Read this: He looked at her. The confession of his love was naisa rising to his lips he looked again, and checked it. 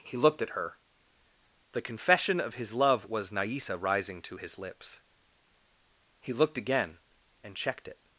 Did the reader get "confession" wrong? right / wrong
right